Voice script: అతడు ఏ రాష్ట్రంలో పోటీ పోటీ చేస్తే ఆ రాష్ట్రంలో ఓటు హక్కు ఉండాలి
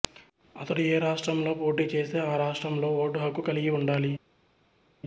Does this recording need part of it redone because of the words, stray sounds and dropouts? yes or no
yes